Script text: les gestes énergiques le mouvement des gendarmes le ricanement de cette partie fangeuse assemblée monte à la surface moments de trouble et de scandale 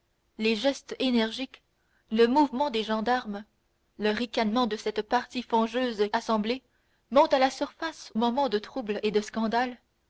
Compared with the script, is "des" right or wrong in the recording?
right